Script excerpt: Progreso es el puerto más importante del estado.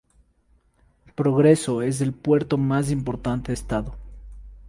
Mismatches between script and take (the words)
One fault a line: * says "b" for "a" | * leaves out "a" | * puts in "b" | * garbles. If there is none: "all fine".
* leaves out "del"